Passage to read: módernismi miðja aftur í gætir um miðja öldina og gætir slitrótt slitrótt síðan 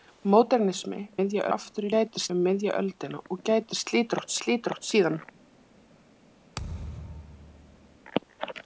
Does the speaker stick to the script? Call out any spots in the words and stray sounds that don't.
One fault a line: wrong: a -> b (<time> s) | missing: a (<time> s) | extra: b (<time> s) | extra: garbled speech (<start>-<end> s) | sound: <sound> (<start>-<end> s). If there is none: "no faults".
sound: thud (6.5-8.0 s)